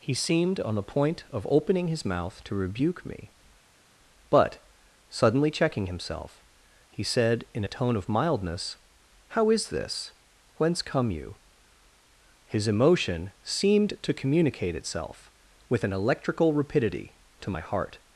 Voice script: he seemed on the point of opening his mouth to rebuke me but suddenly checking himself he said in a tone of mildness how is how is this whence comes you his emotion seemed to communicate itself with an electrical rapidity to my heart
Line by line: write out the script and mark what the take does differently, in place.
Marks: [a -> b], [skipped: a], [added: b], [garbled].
he seemed on the point of opening his mouth to rebuke me but suddenly checking himself he said in a tone of mildness how is [skipped: how is] this whence [comes -> come] you his emotion seemed to communicate itself with an electrical rapidity to my heart